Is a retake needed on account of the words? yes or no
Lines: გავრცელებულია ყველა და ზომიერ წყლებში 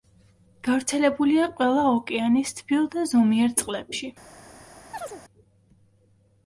yes